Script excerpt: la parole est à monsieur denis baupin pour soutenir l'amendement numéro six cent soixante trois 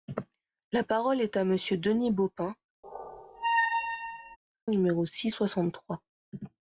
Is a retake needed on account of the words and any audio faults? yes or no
yes